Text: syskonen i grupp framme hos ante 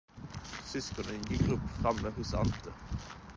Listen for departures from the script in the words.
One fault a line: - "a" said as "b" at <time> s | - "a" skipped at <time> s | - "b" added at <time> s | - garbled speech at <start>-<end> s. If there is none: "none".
none